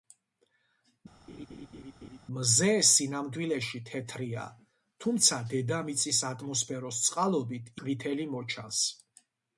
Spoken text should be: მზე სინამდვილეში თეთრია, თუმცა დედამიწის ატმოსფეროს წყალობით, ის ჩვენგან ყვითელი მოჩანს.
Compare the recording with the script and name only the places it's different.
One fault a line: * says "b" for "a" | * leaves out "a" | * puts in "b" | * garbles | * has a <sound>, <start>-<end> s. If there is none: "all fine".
* has a laugh, 1.3-2.2 s
* leaves out "ის ჩვენგან"